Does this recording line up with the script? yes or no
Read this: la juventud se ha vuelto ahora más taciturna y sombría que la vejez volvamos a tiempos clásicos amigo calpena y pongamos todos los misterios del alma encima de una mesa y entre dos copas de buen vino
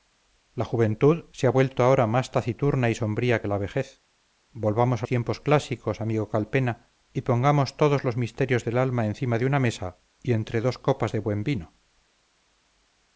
yes